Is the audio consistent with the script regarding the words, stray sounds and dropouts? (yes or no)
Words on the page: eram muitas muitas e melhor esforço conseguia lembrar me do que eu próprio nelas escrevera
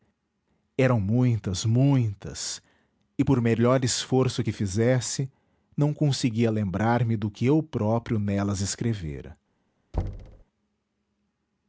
no